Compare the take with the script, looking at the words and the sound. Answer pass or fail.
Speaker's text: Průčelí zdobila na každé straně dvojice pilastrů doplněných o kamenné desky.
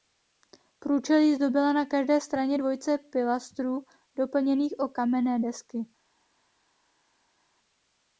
pass